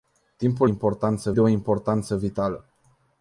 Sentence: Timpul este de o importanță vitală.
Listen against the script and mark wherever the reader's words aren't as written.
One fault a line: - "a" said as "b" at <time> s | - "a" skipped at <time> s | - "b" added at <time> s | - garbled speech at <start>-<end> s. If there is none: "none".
- "este" said as "importanță" at 0.6 s